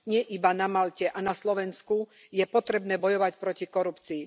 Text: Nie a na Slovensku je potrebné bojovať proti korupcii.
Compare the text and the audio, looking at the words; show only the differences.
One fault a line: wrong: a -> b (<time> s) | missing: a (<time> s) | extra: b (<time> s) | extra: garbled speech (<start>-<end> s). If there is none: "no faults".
extra: iba na Malte (0.3 s)